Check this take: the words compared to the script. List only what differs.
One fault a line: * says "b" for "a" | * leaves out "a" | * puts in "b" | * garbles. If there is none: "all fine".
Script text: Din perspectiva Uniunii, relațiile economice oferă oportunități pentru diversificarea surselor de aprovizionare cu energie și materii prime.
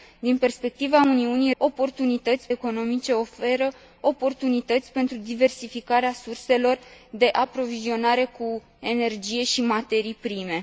* says "oportunități" for "relațiile"